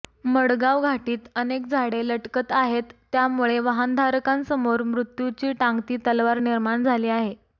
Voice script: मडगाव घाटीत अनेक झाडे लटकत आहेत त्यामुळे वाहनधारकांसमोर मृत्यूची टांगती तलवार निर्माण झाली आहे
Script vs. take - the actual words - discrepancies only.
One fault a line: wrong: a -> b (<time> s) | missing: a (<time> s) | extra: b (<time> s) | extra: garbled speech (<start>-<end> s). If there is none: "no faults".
no faults